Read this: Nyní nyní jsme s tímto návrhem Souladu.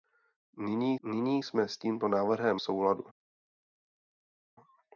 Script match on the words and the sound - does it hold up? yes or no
yes